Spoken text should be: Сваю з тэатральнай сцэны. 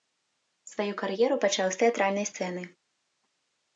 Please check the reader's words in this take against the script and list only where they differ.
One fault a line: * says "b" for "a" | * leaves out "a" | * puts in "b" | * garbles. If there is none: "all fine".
* puts in "кар'еру пачаў"